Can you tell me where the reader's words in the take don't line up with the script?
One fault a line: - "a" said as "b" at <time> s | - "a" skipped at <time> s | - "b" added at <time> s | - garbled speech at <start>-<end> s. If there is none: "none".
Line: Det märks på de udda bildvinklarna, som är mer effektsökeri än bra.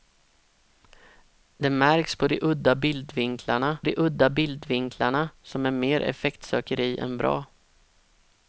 - "de udda bildvinklarna" added at 3.8 s